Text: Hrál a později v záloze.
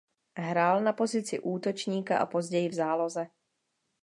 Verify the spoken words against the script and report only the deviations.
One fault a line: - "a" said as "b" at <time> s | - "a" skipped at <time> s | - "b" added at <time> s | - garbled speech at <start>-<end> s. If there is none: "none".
- "na pozici útočníka" added at 0.8 s